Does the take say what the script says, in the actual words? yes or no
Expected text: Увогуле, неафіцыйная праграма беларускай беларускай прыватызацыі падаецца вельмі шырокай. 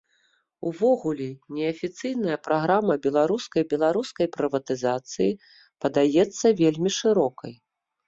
yes